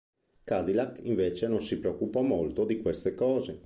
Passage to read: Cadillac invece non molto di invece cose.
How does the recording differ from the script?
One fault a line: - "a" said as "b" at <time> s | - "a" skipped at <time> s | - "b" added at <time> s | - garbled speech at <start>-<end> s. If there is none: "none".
- "si preoccupò" added at 1.6 s
- "invece" said as "queste" at 2.8 s